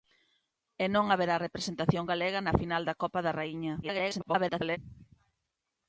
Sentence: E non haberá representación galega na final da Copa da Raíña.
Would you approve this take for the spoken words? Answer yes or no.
no